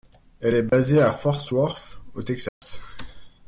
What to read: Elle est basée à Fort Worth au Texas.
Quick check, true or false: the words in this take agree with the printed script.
true